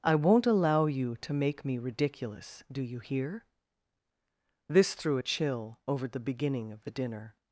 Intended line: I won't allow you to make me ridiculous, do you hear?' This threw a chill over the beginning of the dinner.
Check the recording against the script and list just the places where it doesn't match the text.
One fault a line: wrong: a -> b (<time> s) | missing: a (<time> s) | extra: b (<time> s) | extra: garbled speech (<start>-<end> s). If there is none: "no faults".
no faults